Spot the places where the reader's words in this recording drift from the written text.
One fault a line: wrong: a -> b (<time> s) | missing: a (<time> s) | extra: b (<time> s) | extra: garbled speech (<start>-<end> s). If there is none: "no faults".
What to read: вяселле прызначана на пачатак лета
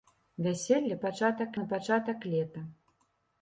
wrong: прызначана -> пачатак (1.0 s)